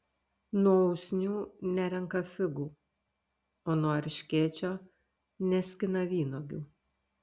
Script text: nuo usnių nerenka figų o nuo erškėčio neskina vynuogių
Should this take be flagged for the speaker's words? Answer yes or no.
no